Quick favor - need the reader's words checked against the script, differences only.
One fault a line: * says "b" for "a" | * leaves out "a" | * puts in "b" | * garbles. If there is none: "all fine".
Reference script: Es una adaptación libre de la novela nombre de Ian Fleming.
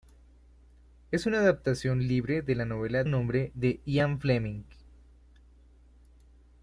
all fine